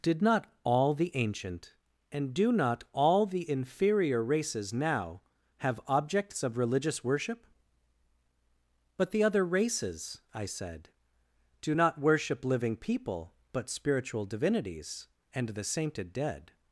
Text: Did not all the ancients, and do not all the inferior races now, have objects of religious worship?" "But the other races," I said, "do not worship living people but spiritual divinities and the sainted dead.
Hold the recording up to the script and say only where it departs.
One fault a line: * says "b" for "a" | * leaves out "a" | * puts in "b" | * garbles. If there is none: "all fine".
* says "ancient" for "ancients"